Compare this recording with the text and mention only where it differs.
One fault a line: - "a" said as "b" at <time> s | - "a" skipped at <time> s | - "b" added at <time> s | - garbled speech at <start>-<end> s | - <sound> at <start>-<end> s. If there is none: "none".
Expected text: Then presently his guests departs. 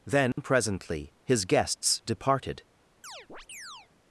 - dropout at 0.3-0.4 s
- "departs" said as "departed" at 2.0 s
- chirp at 3.0-3.9 s